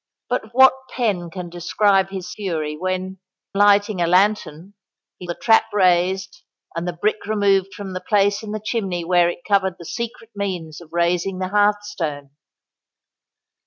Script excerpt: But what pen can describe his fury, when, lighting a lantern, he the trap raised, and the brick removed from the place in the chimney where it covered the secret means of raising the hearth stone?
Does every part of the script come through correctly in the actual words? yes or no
yes